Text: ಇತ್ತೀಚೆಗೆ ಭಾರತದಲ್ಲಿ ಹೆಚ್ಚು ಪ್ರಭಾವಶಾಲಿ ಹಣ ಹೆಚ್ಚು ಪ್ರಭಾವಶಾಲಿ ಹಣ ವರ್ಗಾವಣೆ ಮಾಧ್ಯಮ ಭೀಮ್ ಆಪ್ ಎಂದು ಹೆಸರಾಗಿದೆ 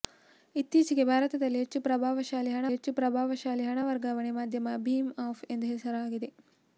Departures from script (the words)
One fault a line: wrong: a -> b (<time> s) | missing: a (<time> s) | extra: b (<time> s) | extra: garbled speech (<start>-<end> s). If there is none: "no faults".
no faults